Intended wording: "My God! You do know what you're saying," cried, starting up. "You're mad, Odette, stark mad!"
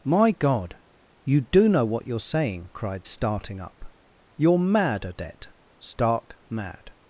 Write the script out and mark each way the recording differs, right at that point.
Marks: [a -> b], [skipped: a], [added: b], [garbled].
"My God! You do know what you're saying," cried, starting up. "You're mad, Odette, stark mad!"